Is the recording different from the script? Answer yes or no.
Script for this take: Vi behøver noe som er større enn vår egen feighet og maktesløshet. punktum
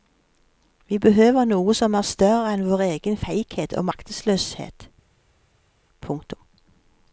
no